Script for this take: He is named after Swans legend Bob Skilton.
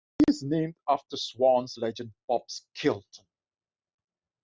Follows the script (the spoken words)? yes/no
yes